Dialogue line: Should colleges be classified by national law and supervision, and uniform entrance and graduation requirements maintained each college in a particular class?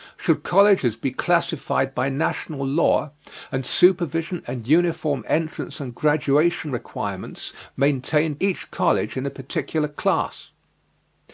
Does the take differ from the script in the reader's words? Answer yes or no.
no